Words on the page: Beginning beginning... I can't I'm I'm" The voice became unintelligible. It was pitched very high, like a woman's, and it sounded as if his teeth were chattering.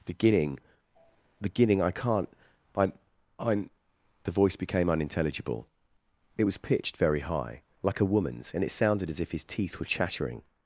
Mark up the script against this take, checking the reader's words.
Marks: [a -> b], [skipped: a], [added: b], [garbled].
Beginning beginning... I can't I'm I'm" The voice became unintelligible. It was pitched very high, like a woman's, and it sounded as if his teeth were chattering.